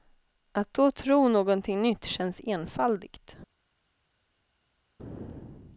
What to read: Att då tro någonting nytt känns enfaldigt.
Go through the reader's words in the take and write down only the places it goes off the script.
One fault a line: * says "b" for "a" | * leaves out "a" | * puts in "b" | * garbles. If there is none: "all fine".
all fine